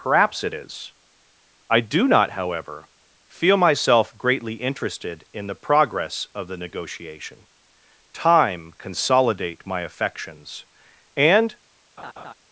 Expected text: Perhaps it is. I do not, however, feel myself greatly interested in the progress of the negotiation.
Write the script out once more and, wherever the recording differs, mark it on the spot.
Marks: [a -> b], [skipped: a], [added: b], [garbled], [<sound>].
Perhaps it is. I do not, however, feel myself greatly interested in the progress of the negotiation. [added: Time consolidate my affections and] [laugh]